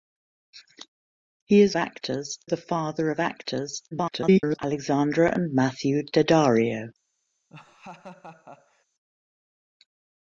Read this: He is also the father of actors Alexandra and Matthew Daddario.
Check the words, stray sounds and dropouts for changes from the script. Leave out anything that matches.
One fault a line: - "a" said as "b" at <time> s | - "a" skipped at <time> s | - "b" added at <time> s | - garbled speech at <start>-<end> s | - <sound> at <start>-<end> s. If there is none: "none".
- "also" said as "actors" at 1.7 s
- garbled speech at 3.9-4.6 s
- laugh at 7.5-8.8 s